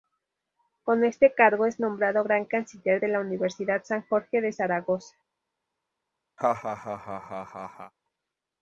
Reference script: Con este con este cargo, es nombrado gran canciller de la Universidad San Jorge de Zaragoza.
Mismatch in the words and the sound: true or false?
true